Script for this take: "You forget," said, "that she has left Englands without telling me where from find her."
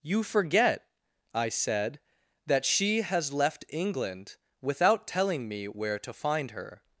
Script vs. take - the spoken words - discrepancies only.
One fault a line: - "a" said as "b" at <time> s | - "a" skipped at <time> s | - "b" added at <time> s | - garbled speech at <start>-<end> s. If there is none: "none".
- "I" added at 1.3 s
- "Englands" said as "England" at 3.7 s
- "from" said as "to" at 6.0 s